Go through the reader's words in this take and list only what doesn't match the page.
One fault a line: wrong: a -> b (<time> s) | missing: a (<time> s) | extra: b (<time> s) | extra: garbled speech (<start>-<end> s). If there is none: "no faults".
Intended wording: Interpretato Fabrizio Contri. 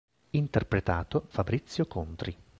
no faults